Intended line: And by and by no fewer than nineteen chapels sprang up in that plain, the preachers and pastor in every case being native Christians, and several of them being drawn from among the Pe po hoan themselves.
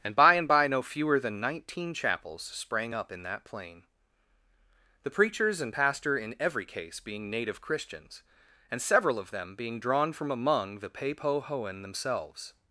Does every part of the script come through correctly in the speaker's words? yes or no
yes